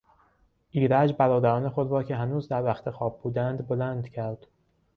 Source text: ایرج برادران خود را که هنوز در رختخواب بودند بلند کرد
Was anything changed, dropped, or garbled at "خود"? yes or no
no